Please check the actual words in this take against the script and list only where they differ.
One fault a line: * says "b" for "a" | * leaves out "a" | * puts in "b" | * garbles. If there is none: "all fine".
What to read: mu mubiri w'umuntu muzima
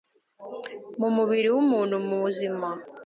all fine